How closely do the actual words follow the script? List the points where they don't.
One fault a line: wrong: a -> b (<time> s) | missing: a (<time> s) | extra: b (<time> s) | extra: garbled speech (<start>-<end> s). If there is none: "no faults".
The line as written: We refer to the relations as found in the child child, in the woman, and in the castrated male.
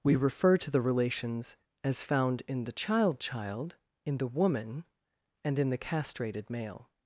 no faults